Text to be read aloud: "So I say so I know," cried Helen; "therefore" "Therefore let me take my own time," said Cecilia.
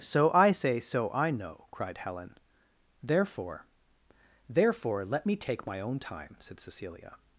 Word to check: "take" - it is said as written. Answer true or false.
true